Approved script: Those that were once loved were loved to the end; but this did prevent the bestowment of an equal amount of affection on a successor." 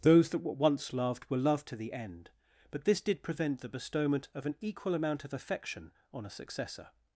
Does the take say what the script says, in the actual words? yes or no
yes